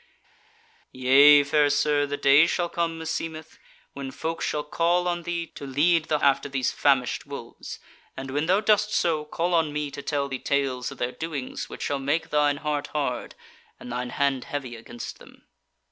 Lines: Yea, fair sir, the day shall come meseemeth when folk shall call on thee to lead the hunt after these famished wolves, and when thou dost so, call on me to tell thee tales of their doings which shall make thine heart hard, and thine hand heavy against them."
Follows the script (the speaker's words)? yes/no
no